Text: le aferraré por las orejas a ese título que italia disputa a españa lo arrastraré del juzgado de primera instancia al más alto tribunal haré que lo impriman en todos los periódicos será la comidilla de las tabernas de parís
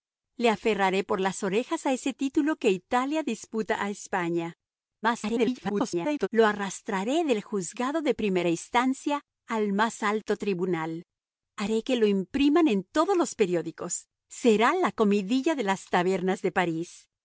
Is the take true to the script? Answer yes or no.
no